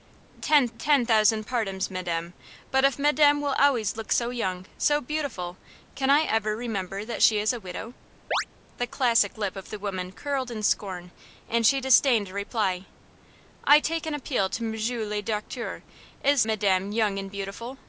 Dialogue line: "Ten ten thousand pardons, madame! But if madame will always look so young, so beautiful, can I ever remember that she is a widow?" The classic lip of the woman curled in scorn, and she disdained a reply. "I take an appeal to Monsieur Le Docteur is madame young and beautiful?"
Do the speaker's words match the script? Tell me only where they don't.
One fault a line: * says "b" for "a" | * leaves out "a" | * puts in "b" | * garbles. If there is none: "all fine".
all fine